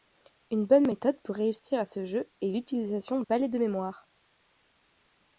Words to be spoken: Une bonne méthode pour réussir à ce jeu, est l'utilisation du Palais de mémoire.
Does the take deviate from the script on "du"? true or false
true